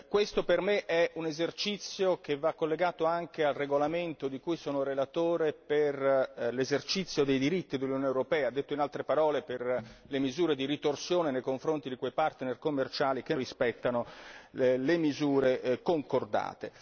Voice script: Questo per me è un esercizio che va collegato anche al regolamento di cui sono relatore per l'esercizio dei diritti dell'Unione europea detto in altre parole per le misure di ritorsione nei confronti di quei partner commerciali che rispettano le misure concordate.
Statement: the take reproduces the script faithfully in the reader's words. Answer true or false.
true